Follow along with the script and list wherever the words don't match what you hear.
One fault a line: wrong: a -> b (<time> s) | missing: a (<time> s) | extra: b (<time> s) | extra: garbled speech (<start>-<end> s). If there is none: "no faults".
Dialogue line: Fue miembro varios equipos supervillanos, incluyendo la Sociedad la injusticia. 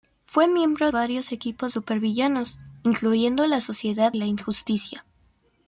no faults